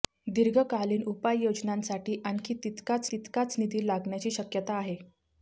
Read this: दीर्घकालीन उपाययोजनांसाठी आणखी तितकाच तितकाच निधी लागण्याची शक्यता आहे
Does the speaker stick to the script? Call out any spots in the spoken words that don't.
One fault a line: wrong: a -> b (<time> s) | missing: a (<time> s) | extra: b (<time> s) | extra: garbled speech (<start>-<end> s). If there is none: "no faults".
no faults